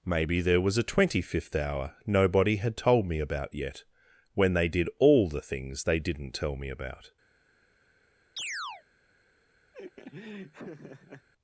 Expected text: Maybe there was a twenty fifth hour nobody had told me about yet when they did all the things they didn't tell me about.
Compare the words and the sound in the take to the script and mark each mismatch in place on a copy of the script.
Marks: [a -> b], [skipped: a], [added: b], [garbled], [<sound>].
Maybe there was a twenty fifth hour nobody had told me about yet when they did all the things they didn't tell me about. [chirp] [laugh]